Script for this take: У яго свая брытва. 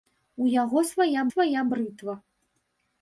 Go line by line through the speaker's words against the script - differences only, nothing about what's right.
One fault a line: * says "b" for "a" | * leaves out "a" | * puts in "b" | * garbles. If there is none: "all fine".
* puts in "свая"